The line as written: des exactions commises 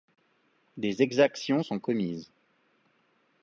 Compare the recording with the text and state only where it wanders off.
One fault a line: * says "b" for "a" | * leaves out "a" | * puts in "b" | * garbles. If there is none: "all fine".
* puts in "sont"